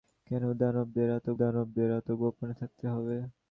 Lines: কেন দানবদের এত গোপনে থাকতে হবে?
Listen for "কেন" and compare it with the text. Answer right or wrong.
right